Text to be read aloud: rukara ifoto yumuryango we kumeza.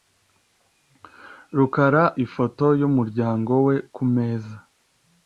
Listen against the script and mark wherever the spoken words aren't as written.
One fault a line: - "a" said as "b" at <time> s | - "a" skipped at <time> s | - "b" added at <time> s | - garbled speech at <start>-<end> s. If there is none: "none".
none